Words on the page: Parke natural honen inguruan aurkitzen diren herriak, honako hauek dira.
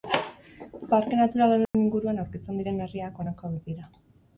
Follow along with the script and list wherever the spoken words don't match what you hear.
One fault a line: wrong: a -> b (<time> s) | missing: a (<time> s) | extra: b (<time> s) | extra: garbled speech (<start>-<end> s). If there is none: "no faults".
no faults